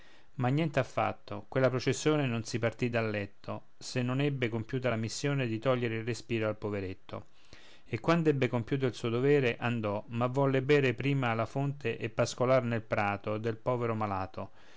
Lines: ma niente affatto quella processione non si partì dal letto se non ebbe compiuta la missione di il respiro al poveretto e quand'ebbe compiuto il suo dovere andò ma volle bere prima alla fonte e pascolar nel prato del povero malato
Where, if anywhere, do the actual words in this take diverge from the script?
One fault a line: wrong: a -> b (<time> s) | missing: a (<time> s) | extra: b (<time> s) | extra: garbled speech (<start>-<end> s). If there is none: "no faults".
extra: togliere (5.6 s)